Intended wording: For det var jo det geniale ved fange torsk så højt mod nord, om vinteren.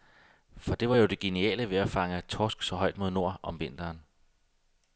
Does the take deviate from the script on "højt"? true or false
false